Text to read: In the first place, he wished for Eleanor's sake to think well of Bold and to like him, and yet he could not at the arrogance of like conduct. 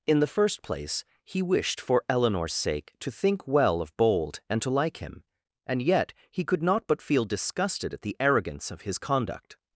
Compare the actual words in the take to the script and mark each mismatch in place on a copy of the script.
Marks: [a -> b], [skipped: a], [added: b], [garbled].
In the first place, he wished for Eleanor's sake to think well of Bold and to like him, and yet he could not [added: but feel disgusted] at the arrogance of [like -> his] conduct.